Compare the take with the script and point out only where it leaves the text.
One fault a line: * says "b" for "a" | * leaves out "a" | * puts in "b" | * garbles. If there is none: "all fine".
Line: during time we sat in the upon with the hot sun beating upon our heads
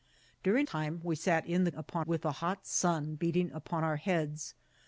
all fine